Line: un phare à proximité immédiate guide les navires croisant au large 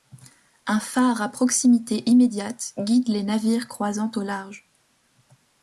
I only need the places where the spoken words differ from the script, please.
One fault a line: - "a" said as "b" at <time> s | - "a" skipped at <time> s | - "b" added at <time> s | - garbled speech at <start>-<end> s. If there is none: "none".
none